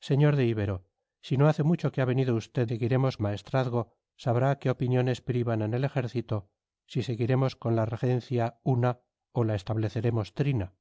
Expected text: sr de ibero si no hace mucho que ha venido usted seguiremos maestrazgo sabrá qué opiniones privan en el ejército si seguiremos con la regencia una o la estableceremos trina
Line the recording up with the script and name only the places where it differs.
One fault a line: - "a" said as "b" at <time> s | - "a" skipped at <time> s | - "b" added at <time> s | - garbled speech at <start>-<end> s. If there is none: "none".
none